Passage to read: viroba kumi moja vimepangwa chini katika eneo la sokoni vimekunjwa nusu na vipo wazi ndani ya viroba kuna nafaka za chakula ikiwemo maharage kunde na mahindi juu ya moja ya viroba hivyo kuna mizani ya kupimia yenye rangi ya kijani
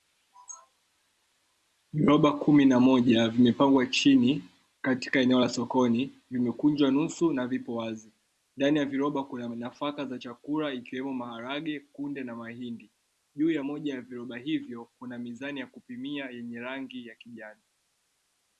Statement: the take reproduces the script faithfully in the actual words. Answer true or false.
false